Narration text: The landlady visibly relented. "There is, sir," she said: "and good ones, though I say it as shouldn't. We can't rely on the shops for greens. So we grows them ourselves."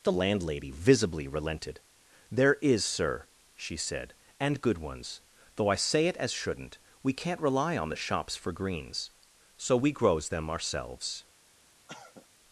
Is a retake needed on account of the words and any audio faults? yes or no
yes